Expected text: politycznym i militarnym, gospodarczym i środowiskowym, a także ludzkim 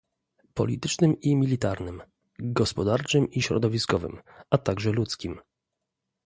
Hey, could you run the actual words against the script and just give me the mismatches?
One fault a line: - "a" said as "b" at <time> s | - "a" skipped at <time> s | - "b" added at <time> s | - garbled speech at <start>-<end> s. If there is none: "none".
none